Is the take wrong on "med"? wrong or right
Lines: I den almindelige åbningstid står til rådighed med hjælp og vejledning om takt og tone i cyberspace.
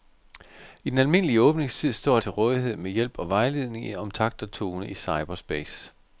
right